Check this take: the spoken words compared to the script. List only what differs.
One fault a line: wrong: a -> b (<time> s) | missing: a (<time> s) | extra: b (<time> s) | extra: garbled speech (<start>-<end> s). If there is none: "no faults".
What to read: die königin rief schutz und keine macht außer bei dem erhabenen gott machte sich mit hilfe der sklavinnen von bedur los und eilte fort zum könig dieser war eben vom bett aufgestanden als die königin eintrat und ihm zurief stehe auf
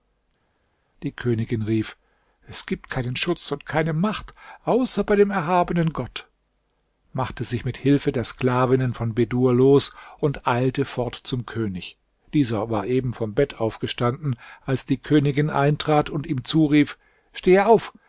extra: es gibt keinen (2.5 s)